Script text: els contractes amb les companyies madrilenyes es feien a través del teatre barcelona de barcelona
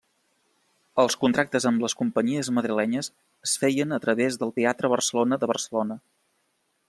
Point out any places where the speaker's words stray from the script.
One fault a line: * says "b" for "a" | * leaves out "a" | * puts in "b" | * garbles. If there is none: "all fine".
all fine